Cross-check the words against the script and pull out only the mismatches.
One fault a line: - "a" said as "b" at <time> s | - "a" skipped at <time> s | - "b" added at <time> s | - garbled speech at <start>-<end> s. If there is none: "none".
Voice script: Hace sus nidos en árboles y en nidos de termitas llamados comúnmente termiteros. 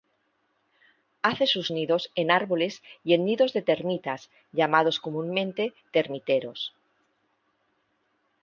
none